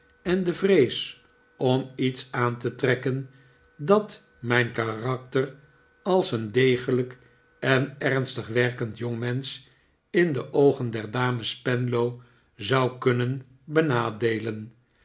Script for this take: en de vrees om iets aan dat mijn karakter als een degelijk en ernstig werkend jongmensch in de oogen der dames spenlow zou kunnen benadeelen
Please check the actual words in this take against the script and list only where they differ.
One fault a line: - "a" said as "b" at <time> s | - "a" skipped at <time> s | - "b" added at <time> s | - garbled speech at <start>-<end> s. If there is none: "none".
- "te trekken" added at 2.6 s